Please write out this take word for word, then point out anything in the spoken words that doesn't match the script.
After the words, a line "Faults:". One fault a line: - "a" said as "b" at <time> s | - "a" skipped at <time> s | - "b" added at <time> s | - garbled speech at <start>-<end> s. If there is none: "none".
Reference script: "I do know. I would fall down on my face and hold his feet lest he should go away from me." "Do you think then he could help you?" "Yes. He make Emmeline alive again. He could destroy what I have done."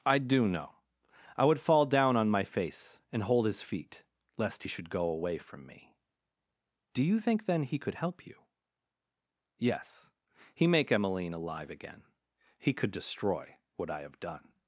"I do know. I would fall down on my face and hold his feet lest he should go away from me." "Do you think then he could help you?" "Yes. He make Emmeline alive again. He could destroy what I have done."
Faults:
none